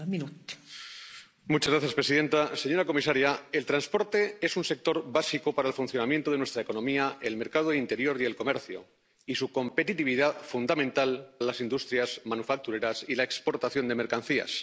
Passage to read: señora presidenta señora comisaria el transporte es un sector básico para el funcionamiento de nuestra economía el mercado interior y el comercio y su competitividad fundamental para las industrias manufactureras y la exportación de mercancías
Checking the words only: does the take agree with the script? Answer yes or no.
no